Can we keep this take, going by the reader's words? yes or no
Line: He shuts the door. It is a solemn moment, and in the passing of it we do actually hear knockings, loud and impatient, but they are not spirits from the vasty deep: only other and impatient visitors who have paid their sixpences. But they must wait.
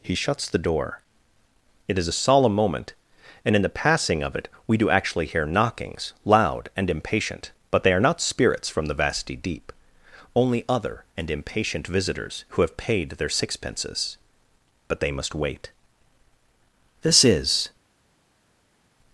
no